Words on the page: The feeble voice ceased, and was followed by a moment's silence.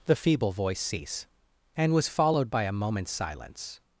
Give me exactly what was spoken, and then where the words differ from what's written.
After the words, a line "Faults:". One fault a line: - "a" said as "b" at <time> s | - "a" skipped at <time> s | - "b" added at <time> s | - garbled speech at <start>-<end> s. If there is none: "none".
The feeble voice cease, and was followed by a moment's silence.
Faults:
- "ceased" said as "cease" at 0.8 s